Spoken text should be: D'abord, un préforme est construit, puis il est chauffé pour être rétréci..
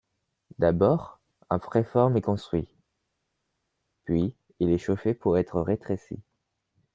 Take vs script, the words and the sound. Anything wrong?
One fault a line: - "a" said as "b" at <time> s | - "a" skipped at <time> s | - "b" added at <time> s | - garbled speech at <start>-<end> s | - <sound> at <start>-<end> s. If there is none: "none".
none